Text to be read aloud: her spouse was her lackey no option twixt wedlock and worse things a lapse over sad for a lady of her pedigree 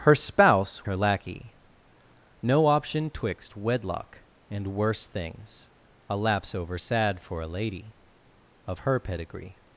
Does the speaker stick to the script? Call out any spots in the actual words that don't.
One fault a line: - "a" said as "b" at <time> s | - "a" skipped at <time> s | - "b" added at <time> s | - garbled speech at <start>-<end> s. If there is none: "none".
- "was" skipped at 0.9 s